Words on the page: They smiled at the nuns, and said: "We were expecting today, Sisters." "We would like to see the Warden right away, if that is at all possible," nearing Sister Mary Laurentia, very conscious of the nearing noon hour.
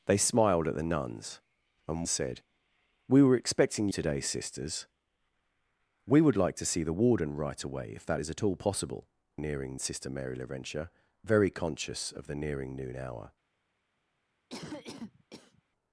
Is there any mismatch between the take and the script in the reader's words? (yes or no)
no